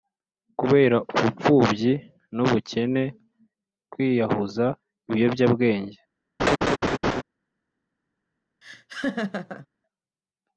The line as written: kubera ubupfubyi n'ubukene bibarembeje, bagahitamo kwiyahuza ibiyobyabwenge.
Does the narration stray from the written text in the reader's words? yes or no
yes